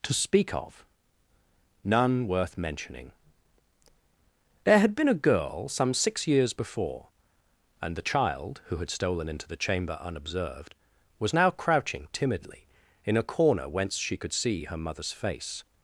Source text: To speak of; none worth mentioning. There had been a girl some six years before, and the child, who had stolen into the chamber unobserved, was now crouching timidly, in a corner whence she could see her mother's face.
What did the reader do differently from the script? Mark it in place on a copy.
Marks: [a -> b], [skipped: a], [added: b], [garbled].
To speak of; none worth mentioning. There had been a girl some six years before, and the child, who had stolen into the chamber unobserved, was now crouching timidly, in a corner whence she could see her mother's face.